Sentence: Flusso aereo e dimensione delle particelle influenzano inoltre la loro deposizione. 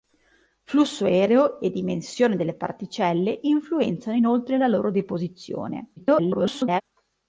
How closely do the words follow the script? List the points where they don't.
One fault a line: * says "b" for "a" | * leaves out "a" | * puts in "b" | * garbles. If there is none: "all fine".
* garbles